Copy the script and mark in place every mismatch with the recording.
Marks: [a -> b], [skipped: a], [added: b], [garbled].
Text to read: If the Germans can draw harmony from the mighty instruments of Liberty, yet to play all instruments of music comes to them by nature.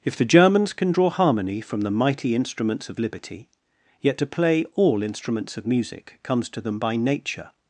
If the Germans can draw harmony from the mighty instruments of Liberty, yet to play all instruments of music comes to them by nature.